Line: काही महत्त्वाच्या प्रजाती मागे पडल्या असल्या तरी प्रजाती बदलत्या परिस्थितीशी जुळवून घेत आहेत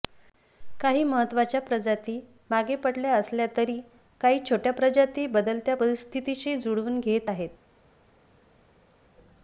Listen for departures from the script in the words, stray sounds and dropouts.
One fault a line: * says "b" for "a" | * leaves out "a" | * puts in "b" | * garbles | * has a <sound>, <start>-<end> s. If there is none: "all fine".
* puts in "काही छोट्या"